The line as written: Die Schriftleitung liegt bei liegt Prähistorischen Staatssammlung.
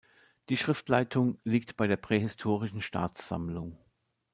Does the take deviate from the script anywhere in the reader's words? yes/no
yes